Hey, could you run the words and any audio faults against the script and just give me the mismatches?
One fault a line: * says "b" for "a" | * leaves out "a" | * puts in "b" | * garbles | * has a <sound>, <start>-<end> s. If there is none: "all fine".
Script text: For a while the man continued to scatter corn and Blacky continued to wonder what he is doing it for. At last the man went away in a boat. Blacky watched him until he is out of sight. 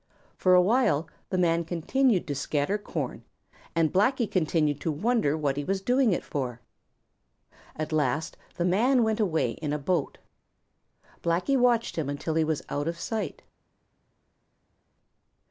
* says "was" for "is"
* says "was" for "is"